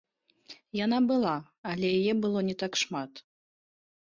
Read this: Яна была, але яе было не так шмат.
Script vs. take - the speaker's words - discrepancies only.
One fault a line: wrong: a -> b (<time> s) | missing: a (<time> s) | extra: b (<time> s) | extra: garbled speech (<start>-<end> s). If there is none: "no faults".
no faults